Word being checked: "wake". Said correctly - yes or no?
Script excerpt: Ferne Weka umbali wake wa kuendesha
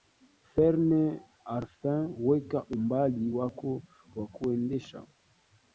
no